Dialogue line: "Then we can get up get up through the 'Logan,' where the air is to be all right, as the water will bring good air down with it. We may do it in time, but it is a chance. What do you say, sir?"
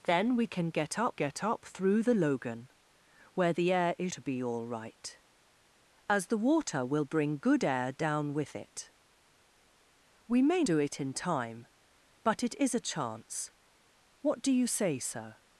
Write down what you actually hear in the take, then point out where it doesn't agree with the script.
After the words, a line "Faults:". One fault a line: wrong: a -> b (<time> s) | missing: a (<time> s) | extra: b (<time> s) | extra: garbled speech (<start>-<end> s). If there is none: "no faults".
"Then we can get up get up through the 'Logan,' where the air is to be all right, as the water will bring good air down with it. We may do it in time, but it is a chance. What do you say, sir?"
Faults:
no faults